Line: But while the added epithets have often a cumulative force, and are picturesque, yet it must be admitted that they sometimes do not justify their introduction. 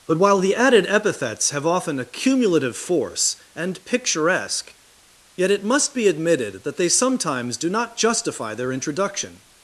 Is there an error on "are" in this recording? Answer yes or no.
yes